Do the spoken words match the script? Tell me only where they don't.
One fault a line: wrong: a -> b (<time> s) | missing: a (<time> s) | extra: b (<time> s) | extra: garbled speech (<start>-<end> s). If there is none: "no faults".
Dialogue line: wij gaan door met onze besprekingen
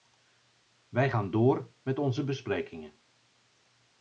no faults